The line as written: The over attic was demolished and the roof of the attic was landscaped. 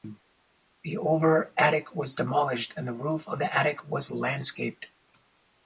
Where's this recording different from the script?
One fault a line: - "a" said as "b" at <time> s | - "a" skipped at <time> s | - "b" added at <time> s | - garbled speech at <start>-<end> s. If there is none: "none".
none